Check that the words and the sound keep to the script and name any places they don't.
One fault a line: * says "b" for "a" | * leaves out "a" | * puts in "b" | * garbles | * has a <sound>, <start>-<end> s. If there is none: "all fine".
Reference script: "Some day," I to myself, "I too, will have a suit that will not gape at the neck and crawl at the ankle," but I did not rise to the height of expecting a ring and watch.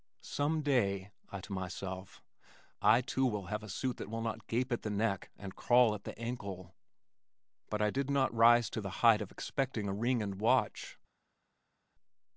all fine